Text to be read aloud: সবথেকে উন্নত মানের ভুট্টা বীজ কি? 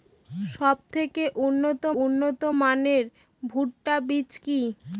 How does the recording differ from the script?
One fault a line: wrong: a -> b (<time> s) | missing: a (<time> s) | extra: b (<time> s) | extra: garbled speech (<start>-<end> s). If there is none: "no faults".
extra: উন্নত (2.0 s)